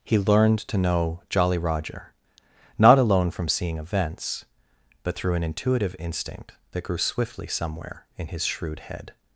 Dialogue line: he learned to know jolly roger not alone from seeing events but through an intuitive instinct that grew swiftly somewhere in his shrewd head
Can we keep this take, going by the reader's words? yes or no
yes